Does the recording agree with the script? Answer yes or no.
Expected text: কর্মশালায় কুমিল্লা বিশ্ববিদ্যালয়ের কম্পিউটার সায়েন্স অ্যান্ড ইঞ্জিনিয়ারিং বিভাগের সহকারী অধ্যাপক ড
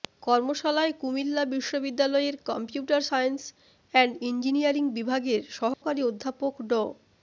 yes